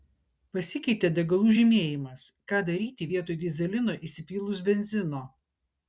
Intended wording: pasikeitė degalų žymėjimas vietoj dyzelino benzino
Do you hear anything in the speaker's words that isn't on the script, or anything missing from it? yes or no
yes